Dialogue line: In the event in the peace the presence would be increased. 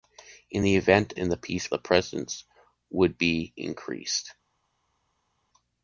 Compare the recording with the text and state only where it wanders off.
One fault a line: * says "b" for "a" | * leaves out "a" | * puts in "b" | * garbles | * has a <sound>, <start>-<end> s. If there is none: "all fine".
all fine